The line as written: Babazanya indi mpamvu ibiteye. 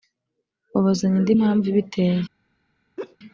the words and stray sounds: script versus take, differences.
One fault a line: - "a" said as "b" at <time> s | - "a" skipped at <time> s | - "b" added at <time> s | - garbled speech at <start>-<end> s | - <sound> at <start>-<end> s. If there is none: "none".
- laugh at 3.0-3.2 s